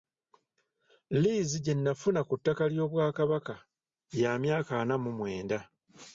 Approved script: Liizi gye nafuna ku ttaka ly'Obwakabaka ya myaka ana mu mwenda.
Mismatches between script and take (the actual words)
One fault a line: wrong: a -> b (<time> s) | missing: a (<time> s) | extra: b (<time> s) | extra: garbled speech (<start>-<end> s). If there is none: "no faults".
no faults